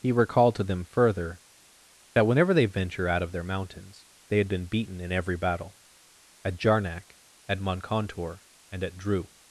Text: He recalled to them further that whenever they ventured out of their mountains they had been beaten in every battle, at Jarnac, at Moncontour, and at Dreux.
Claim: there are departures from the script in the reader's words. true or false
true